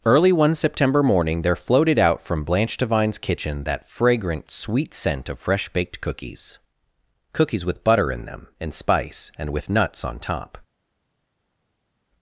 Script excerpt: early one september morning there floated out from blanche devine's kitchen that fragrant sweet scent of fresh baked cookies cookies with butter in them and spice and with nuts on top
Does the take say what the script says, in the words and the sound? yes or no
yes